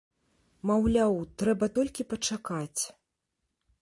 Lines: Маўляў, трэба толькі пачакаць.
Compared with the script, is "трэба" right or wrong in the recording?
right